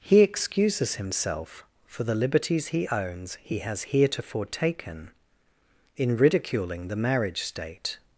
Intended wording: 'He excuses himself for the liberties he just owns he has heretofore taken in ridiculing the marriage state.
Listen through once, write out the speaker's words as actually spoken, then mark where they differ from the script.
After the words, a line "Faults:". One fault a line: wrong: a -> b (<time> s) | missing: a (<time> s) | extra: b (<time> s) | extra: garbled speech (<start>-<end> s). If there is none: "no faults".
'He excuses himself for the liberties he owns he has heretofore taken in ridiculing the marriage state.
Faults:
missing: just (2.9 s)